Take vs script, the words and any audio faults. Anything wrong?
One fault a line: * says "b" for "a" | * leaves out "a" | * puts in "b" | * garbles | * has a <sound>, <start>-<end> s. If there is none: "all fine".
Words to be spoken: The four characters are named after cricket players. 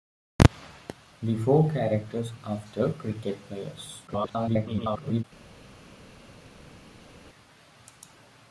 * leaves out "are named"
* garbles